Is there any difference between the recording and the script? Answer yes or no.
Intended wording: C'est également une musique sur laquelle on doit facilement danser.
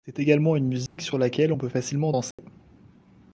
yes